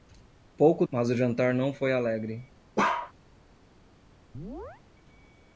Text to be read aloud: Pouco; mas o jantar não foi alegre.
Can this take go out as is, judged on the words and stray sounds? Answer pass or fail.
fail